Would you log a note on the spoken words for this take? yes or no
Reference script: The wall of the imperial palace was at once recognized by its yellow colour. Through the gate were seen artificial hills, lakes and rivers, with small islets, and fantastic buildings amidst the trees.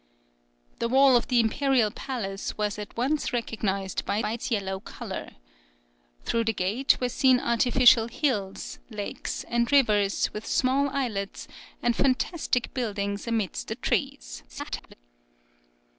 yes